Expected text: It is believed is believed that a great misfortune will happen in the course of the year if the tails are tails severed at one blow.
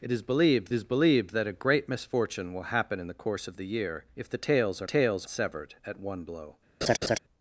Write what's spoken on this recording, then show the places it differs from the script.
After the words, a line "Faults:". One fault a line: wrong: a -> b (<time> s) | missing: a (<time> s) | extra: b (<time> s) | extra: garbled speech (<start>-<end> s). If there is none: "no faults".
It is believed is believed that a great misfortune will happen in the course of the year if the tails are tails severed at one blow.
Faults:
no faults